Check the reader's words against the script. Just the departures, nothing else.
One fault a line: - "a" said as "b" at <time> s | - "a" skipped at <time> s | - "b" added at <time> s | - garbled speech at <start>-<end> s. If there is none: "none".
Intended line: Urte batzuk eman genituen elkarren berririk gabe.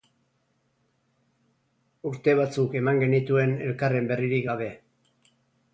none